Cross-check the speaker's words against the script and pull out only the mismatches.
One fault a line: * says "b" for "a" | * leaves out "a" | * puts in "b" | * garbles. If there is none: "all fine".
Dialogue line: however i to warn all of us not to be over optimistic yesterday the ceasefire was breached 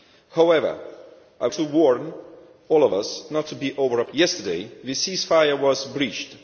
all fine